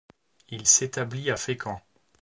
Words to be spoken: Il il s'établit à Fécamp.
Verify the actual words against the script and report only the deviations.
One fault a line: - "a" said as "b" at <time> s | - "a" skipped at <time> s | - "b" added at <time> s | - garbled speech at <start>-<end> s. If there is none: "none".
- "il" skipped at 0.7 s